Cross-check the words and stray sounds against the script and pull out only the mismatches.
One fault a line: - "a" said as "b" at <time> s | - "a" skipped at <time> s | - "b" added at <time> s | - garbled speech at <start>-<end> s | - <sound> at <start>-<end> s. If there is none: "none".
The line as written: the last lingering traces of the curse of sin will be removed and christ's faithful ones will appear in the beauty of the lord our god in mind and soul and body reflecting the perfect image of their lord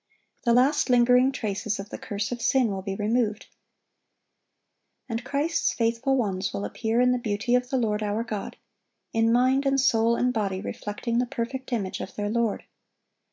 none